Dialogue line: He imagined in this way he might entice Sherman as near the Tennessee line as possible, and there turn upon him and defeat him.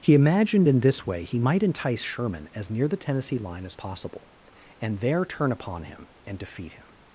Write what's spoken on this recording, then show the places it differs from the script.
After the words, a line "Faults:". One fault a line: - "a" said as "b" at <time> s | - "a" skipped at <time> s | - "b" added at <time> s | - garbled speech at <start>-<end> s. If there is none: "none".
He imagined in this way he might entice Sherman as near the Tennessee line as possible, and there turn upon him and defeat him.
Faults:
none